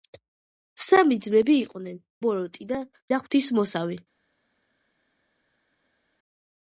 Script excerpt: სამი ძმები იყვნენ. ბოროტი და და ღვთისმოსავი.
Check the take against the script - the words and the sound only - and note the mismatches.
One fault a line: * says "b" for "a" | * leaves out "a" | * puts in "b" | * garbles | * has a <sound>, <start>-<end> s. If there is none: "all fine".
all fine